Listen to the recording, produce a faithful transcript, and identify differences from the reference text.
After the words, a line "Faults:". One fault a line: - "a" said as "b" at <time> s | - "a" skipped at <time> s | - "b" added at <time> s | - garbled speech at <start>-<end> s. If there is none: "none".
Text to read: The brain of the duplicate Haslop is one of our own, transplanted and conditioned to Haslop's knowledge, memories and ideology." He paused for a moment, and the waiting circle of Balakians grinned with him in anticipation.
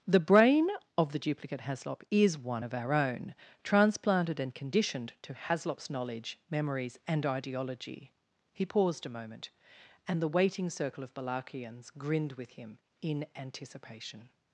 The brain of the duplicate Haslop is one of our own, transplanted and conditioned to Haslop's knowledge, memories and ideology." He paused a moment, and the waiting circle of Balakians grinned with him in anticipation.
Faults:
- "for" skipped at 9.1 s